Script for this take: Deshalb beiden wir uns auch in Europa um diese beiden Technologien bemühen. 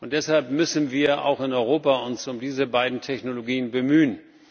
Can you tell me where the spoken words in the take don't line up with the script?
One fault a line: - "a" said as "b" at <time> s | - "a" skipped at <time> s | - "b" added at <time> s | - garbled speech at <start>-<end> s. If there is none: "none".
- "beiden" said as "müssen" at 0.5 s